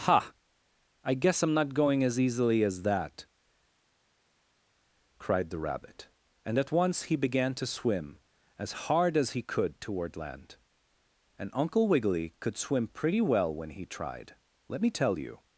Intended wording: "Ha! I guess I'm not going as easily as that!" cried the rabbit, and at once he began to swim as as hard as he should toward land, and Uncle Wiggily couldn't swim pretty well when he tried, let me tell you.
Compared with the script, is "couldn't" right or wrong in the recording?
wrong